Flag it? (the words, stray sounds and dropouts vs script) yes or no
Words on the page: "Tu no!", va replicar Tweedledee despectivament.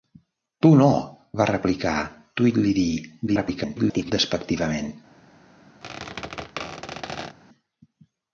yes